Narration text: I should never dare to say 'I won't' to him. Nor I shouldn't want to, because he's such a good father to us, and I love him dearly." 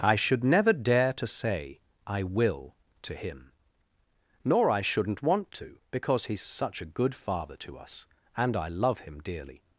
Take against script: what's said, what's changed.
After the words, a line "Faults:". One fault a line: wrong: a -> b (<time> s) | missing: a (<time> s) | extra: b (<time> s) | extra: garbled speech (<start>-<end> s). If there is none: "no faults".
I should never dare to say 'I will' to him. Nor I shouldn't want to, because he's such a good father to us, and I love him dearly."
Faults:
wrong: won't -> will (2.2 s)